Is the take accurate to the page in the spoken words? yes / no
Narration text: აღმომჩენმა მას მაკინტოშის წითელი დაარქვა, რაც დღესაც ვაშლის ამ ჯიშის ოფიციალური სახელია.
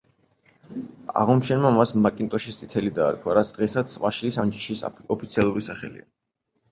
yes